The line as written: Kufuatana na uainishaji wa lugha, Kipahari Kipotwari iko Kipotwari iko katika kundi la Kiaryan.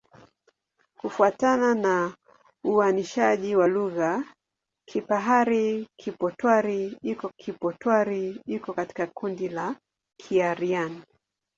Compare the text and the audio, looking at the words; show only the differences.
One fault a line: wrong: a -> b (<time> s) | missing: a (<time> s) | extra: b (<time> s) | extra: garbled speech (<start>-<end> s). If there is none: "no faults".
no faults